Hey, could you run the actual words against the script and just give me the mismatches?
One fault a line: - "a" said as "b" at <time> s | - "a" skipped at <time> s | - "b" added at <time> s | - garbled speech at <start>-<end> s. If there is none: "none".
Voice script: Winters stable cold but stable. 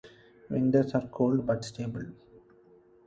- "stable" said as "are" at 0.9 s